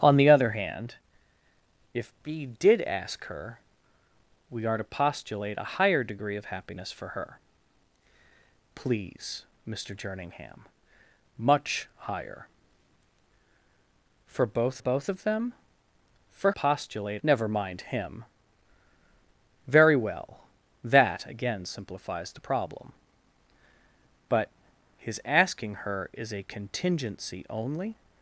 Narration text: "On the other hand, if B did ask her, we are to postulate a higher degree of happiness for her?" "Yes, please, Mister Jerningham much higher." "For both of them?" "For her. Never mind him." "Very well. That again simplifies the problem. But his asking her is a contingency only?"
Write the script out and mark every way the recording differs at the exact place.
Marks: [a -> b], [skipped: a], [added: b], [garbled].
"On the other hand, if B did ask her, we are to postulate a higher degree of happiness for her?" [skipped: "Yes,] please, Mister Jerningham much higher." "For both [added: both] of them?" "For [her. -> postulate] Never mind him." "Very well. That again simplifies the problem. But his asking her is a contingency only?"